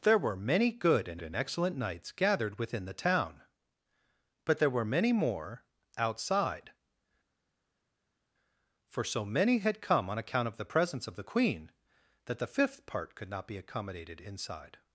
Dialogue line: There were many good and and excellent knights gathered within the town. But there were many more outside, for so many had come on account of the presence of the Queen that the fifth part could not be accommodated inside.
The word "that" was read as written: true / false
true